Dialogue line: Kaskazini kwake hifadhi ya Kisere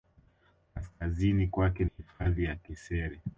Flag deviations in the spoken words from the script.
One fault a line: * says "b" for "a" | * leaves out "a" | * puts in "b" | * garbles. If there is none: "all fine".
all fine